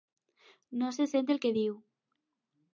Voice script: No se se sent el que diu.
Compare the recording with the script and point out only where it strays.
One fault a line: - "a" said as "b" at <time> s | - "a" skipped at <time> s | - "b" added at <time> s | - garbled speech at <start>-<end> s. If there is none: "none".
- "se" skipped at 1.1 s